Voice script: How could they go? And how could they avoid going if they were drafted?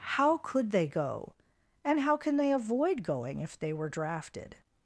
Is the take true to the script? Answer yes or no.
no